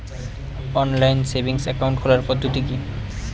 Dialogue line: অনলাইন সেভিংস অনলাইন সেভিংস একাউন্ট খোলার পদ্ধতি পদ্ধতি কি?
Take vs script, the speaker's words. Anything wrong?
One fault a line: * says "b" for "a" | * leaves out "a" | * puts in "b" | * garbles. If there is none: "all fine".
* leaves out "অনলাইন সেভিংস"
* leaves out "পদ্ধতি"